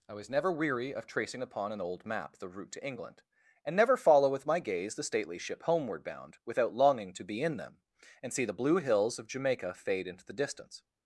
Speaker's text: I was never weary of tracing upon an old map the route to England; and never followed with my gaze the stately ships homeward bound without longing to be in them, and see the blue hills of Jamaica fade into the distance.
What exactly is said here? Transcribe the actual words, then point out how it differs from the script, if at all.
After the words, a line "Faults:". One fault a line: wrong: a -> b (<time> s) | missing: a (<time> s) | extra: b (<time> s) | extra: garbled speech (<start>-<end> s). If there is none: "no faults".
I was never weary of tracing upon an old map the route to England; and never follow with my gaze the stately ship homeward bound without longing to be in them, and see the blue hills of Jamaica fade into the distance.
Faults:
wrong: followed -> follow (4.0 s)
wrong: ships -> ship (5.4 s)